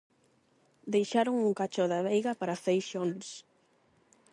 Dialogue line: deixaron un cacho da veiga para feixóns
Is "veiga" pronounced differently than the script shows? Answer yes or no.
no